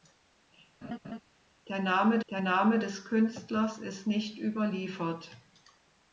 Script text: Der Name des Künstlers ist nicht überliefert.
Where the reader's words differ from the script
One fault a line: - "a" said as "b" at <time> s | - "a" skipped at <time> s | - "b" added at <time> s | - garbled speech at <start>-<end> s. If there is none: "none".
- "der Name" added at 2.3 s